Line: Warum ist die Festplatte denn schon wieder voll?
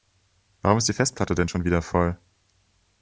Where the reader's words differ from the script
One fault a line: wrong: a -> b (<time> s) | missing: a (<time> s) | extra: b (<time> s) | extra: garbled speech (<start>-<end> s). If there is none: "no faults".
no faults